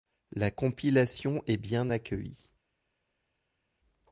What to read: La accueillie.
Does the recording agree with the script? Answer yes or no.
no